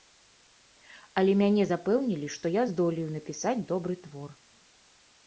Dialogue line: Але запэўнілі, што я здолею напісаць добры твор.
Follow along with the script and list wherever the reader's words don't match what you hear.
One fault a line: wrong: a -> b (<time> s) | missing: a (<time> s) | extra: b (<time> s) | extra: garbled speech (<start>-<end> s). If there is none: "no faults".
extra: мяне (1.4 s)